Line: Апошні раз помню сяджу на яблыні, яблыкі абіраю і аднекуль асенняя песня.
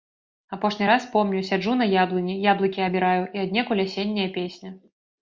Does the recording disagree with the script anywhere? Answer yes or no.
no